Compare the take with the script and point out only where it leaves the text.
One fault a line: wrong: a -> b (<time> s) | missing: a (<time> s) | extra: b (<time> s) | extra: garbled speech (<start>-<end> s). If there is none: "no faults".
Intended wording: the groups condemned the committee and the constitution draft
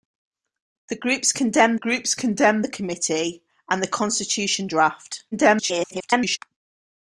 extra: groups condemned (1.7 s)
extra: garbled speech (5.3-6.4 s)